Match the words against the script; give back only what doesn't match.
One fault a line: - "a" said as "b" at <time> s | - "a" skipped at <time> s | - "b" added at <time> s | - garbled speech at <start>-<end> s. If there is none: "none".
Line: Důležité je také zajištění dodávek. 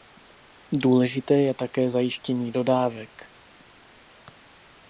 none